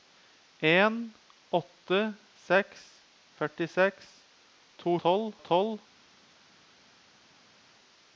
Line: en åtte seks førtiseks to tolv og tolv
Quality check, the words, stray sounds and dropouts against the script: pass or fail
pass